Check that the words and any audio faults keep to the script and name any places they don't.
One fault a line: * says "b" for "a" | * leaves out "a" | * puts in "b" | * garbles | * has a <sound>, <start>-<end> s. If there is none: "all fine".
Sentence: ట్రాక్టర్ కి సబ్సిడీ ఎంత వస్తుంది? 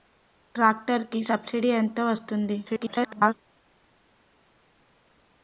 * garbles